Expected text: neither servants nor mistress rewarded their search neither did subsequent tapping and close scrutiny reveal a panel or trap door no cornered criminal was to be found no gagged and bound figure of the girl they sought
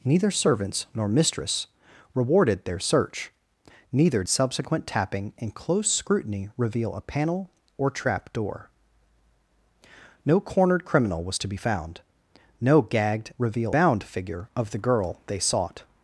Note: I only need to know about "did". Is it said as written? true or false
false